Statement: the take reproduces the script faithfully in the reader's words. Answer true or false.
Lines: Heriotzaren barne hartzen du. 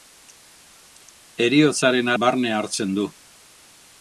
true